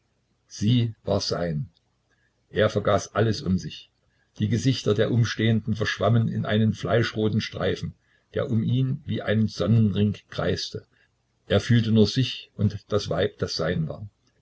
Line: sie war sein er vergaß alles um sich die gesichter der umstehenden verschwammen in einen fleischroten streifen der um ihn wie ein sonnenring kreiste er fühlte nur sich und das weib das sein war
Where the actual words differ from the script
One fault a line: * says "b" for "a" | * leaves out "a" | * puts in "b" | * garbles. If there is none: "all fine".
all fine